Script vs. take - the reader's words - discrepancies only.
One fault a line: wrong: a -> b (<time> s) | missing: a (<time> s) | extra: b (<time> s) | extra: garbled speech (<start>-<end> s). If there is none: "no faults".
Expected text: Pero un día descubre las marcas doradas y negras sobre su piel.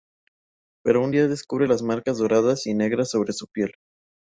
no faults